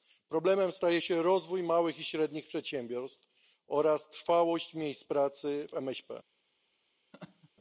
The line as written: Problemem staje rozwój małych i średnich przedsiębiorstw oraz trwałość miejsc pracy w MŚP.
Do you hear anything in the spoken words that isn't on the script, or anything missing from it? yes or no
yes